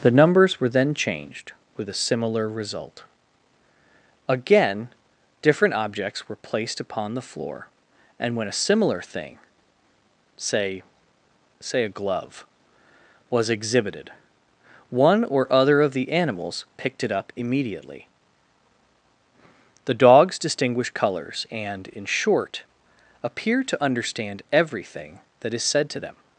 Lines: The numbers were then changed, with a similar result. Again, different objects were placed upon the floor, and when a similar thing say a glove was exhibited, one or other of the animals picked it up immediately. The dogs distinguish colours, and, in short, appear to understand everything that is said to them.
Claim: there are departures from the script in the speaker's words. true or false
true